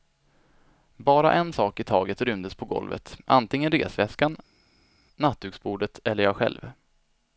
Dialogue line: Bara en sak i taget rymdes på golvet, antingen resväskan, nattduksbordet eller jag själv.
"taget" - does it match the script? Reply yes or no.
yes